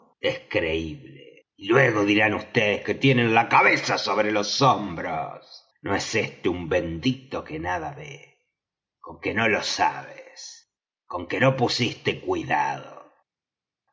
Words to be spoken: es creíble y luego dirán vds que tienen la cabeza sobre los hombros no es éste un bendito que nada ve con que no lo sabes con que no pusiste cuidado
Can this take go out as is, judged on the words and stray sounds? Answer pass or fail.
pass